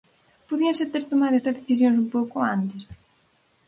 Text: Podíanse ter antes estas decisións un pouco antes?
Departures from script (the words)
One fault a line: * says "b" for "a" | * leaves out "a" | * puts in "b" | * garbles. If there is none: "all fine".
* says "tomado" for "antes"